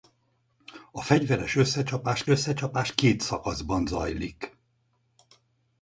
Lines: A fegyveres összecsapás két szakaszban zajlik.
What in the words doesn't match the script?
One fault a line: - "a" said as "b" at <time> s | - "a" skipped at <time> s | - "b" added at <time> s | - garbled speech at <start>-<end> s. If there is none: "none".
- "összecsapás" added at 2.3 s